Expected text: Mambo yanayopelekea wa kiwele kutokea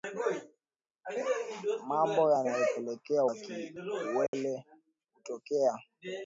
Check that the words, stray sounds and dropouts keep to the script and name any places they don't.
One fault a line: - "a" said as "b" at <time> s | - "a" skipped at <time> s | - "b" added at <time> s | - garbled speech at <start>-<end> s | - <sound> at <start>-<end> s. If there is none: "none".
- dropout at 4.3-4.3 s